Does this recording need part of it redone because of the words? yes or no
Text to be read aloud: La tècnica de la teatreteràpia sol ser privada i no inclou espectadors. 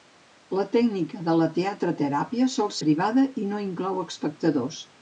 yes